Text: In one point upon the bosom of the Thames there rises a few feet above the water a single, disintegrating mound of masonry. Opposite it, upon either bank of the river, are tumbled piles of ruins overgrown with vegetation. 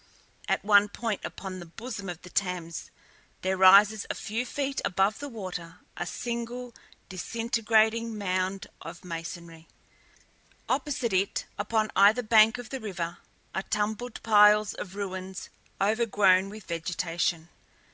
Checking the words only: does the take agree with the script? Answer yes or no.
no